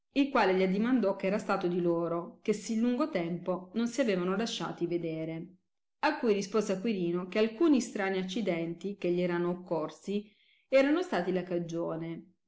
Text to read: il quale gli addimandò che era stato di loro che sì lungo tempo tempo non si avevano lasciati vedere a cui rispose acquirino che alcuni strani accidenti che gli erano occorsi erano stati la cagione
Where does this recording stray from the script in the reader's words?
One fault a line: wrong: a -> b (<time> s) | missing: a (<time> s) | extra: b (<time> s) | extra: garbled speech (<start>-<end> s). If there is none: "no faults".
missing: tempo (3.7 s)